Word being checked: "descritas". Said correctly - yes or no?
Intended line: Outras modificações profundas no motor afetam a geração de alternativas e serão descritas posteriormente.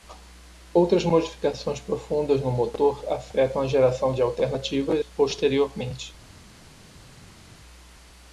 no